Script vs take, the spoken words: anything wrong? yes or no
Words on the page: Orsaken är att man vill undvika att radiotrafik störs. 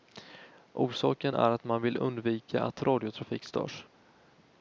no